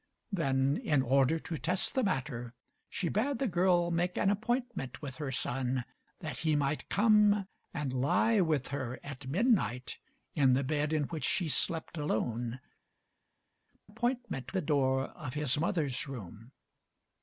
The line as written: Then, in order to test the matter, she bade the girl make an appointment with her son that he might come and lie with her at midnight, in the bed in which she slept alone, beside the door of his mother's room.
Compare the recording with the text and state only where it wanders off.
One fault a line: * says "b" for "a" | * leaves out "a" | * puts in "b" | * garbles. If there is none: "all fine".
* says "appointment" for "beside"